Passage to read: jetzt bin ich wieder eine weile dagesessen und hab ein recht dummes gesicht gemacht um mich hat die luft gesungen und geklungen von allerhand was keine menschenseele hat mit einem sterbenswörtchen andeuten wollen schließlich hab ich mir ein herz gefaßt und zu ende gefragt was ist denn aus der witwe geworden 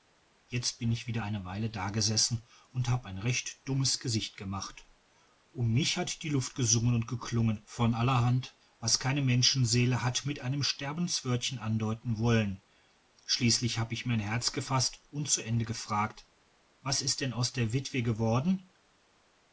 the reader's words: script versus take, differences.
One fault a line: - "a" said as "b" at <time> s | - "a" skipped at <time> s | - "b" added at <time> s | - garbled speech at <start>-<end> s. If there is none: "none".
none